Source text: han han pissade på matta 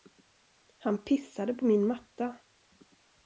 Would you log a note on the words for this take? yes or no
yes